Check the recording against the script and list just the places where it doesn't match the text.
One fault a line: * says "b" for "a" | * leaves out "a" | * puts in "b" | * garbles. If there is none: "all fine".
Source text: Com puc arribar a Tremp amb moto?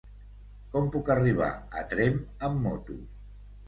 all fine